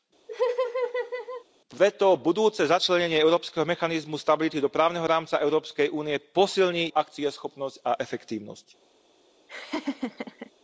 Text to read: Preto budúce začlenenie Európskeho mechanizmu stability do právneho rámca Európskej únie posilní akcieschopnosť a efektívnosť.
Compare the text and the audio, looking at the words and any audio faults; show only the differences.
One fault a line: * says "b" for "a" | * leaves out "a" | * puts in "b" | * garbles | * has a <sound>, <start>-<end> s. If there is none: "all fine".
* has a laugh, 0.3-1.4 s
* has a laugh, 9.5-10.5 s